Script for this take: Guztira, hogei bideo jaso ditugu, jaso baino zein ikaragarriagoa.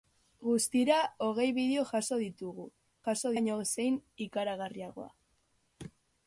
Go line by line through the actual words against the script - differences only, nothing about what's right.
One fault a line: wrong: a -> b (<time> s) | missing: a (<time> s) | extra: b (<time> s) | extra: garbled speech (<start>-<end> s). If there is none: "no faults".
no faults